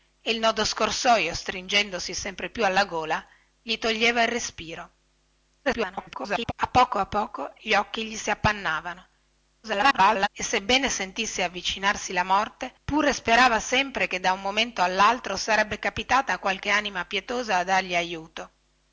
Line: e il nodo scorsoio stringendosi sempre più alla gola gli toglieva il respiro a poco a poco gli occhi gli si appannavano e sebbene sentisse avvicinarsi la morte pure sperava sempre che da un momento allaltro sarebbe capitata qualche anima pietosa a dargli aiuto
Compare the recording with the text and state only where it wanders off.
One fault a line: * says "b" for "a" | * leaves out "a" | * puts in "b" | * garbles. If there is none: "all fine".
* garbles
* garbles